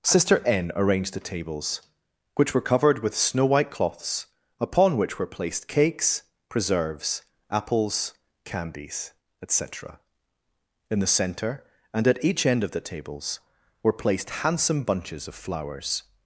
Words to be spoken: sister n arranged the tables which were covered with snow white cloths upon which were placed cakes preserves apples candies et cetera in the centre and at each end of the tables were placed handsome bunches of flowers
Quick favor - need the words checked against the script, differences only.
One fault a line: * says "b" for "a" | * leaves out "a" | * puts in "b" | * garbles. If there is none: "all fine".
all fine